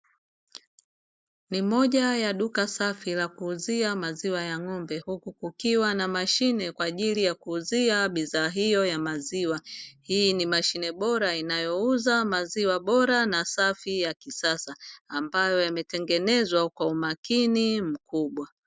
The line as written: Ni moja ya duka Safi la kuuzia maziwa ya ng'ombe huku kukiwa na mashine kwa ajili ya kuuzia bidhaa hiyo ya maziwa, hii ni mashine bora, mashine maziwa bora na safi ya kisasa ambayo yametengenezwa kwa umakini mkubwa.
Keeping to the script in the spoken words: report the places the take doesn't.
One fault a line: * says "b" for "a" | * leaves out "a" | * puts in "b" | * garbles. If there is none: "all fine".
* says "inayouza" for "mashine"